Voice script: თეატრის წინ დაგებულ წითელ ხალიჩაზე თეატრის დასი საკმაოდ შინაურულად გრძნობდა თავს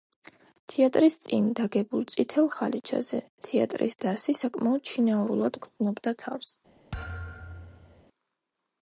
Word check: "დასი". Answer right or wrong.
right